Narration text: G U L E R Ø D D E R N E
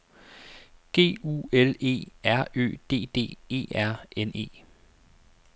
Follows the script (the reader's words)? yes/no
yes